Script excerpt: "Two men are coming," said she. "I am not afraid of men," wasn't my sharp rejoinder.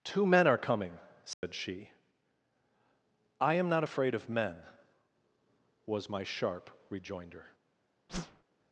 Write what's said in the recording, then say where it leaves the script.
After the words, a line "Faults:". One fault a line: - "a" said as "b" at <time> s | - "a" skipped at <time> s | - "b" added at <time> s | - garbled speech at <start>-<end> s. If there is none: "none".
"Two men are coming," said she. "I am not afraid of men," was my sharp rejoinder.
Faults:
- "wasn't" said as "was" at 5.8 s